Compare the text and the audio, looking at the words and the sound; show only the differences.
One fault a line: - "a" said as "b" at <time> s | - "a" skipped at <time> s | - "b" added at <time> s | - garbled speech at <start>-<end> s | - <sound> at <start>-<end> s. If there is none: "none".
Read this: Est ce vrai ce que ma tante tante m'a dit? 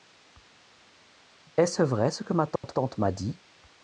- dropout at 2.6-2.6 s